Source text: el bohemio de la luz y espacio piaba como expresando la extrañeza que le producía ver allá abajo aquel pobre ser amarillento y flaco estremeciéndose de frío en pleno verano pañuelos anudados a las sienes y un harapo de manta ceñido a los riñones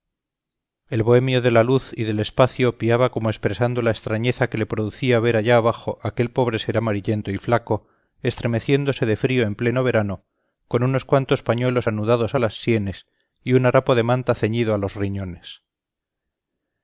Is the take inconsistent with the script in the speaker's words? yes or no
yes